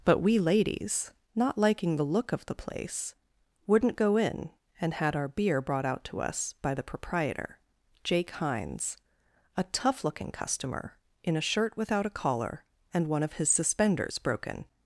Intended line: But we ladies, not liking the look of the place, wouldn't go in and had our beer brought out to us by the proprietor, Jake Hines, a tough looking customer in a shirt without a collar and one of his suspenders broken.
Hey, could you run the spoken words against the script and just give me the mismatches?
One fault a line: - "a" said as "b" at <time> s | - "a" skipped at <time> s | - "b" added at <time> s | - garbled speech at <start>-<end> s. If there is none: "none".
none